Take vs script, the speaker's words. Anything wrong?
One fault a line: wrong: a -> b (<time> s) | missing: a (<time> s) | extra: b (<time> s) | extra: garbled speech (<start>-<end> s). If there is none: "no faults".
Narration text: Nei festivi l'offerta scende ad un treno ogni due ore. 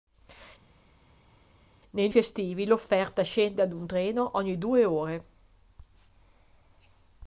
no faults